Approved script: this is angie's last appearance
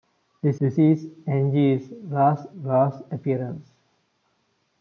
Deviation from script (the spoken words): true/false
true